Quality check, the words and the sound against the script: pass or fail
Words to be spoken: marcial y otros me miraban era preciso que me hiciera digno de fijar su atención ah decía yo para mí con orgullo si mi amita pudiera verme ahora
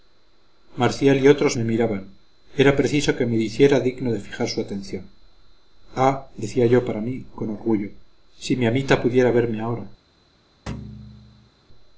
fail